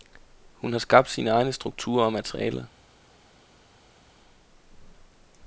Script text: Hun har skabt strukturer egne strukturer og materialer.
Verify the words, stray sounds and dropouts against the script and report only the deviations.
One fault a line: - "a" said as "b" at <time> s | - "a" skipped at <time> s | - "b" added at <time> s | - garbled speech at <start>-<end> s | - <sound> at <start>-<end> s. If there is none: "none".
- "strukturer" said as "sine" at 1.1 s